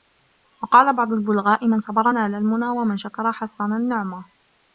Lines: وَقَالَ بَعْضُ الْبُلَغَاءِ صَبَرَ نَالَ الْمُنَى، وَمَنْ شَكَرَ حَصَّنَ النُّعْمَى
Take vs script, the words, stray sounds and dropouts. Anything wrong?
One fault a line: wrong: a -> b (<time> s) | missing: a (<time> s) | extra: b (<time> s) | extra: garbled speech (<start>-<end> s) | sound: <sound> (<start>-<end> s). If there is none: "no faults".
extra: مَنْ (1.7 s)